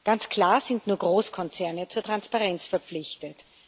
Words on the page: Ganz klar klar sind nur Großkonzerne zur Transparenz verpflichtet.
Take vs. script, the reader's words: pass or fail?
fail